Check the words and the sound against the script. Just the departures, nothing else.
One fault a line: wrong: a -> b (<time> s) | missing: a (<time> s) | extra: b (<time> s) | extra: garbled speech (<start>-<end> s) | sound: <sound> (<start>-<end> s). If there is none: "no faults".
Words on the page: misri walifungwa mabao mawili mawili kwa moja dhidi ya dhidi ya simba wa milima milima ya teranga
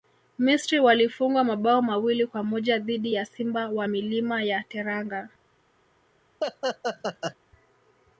missing: mawili (2.3 s)
missing: dhidi ya (3.2 s)
missing: milima (4.4 s)
sound: laugh (6.4-7.4 s)